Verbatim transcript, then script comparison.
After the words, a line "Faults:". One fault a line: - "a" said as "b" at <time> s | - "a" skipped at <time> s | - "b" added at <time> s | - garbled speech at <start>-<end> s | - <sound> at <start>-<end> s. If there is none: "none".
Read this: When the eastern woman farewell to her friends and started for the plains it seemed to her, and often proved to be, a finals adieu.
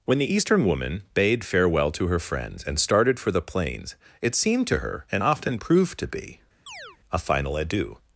When the eastern woman bade farewell to her friends and started for the plains it seemed to her, and often proved to be, a final adieu.
Faults:
- "bade" added at 1.1 s
- chirp at 6.7-7.0 s
- "finals" said as "final" at 7.2 s